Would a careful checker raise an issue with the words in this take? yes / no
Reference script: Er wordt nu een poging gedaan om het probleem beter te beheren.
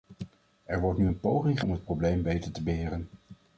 yes